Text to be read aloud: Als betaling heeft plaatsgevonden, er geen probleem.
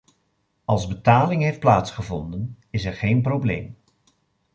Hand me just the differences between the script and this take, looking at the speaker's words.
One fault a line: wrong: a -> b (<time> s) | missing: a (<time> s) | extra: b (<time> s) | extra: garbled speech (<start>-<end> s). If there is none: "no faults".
extra: is (2.7 s)